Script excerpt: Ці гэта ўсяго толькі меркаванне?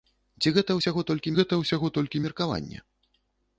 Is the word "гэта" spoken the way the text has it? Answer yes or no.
yes